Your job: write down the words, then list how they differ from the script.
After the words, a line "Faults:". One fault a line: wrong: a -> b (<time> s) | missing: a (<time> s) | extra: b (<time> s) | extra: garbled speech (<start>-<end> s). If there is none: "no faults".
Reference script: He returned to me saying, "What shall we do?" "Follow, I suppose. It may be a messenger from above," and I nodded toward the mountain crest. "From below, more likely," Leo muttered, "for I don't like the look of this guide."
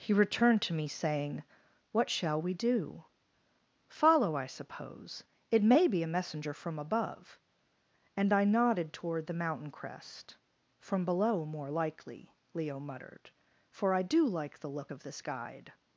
He returned to me saying, "What shall we do?" "Follow, I suppose. It may be a messenger from above," and I nodded toward the mountain crest. "From below, more likely," Leo muttered, "for I do like the look of this guide."
Faults:
wrong: don't -> do (14.0 s)